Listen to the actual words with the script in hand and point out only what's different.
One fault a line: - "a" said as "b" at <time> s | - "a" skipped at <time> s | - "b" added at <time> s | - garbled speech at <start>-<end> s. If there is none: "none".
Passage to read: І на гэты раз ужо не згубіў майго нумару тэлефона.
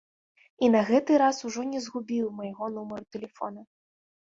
none